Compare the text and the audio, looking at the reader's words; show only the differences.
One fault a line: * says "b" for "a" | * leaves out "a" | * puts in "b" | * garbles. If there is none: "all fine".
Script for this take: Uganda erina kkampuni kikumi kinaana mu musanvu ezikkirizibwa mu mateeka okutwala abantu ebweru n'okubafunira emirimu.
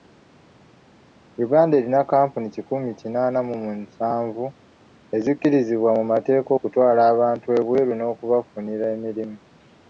all fine